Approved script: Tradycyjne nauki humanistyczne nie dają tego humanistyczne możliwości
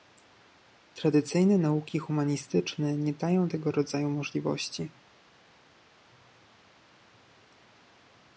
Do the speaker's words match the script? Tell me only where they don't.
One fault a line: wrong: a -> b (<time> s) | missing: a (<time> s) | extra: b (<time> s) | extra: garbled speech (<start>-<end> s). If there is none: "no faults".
wrong: humanistyczne -> rodzaju (3.7 s)